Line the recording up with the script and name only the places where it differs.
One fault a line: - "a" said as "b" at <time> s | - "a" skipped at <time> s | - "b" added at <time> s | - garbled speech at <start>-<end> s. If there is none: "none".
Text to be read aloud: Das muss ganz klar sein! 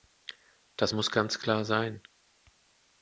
none